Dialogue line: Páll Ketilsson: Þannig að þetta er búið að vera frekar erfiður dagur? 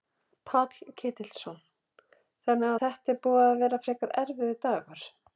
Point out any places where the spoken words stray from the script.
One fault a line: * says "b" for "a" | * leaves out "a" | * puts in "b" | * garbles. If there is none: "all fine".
* leaves out "að"